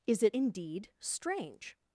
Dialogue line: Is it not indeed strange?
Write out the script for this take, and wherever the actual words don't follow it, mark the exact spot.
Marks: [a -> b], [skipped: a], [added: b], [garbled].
Is it [skipped: not] indeed strange?